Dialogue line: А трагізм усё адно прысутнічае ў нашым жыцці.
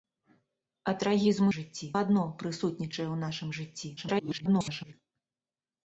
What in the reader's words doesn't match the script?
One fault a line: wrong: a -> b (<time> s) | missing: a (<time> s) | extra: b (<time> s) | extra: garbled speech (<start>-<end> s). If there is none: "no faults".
wrong: усё -> жыцці (1.5 s)
extra: garbled speech (4.0-4.9 s)